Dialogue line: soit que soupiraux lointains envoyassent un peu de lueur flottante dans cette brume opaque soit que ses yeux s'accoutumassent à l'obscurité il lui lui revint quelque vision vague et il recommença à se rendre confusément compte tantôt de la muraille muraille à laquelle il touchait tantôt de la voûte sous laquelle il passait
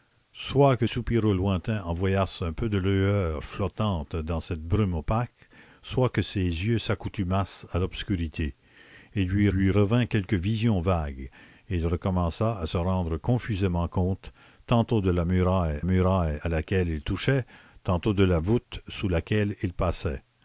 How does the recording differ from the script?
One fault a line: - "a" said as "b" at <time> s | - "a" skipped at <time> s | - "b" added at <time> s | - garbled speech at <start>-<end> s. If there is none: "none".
none